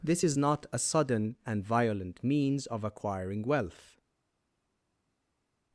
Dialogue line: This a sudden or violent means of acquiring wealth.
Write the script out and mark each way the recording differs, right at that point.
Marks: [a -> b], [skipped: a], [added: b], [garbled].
This [added: is not] a sudden [or -> and] violent means of acquiring wealth.